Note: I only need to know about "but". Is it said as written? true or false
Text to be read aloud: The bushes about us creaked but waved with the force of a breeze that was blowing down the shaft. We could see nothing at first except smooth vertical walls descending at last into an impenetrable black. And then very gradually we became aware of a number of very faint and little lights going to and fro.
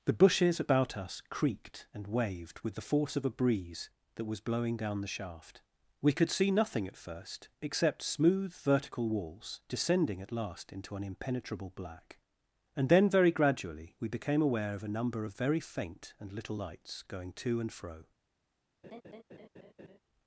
false